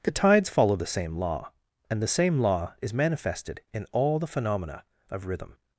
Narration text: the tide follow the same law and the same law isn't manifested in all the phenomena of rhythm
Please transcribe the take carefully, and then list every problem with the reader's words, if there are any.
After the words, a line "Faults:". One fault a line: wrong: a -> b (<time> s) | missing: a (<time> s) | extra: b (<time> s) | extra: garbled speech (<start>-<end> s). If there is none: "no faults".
the tides follow the same law and the same law is manifested in all the phenomena of rhythm
Faults:
wrong: tide -> tides (0.1 s)
wrong: isn't -> is (2.8 s)